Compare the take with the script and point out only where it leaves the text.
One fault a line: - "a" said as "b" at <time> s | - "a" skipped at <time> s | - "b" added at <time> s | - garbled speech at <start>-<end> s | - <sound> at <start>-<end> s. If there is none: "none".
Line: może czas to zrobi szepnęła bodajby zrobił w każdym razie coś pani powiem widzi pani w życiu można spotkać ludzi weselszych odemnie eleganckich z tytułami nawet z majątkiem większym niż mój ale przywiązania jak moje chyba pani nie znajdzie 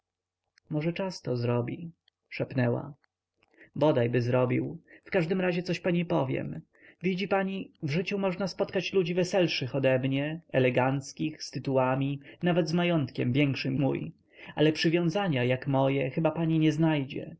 - "niż" skipped at 13.8 s